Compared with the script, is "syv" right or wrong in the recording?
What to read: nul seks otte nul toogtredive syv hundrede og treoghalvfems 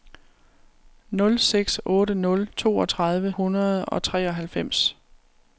wrong